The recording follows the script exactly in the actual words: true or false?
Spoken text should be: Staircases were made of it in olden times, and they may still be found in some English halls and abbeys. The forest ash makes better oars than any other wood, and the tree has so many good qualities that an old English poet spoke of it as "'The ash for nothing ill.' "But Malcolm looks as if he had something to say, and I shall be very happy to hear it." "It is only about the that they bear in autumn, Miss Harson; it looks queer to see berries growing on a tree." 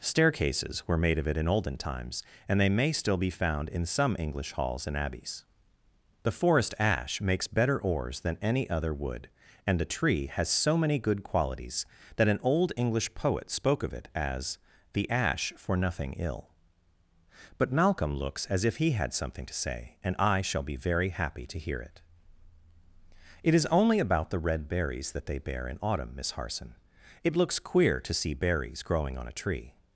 false